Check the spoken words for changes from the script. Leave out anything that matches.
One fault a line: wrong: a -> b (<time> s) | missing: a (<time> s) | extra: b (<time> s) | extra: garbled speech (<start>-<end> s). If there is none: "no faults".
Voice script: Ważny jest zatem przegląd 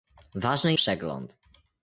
missing: jest zatem (0.7 s)